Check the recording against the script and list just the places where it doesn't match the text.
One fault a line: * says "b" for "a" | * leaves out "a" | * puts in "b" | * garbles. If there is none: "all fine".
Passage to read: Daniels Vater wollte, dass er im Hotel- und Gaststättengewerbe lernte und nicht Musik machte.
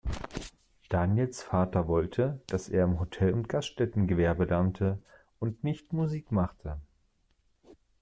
all fine